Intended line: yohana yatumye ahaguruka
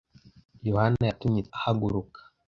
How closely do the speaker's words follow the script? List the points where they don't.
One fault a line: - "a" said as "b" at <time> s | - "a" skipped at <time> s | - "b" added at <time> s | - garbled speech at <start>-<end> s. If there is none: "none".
none